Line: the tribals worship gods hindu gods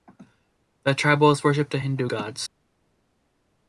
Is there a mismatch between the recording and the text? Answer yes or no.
yes